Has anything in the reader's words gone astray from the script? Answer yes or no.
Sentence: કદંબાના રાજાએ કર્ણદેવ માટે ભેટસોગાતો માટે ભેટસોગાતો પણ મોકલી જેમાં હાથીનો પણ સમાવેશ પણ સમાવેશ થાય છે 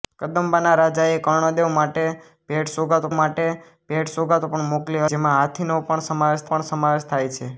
no